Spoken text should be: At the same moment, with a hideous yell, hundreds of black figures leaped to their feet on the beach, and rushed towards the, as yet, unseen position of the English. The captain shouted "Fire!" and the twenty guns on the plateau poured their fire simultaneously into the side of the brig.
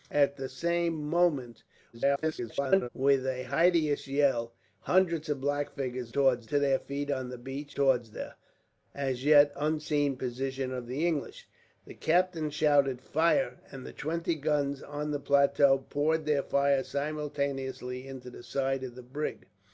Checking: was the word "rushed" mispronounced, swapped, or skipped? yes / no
yes